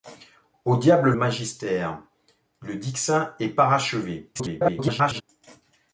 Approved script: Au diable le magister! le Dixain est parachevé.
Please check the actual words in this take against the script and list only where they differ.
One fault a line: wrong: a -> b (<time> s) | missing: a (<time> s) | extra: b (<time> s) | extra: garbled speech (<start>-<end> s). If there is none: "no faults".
missing: le (1.1 s)
extra: garbled speech (4.3-5.2 s)